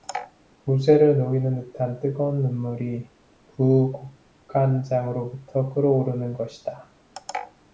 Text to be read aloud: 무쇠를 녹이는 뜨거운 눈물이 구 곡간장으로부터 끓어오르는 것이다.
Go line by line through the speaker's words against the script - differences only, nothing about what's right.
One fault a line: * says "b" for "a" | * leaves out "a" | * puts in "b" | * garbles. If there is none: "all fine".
* puts in "듯한"